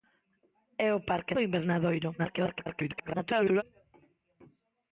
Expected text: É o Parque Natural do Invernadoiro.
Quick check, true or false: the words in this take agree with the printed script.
false